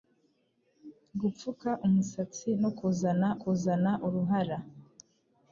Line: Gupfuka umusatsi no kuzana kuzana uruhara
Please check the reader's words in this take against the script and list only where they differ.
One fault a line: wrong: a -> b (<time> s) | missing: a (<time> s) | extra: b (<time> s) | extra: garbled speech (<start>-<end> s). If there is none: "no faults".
no faults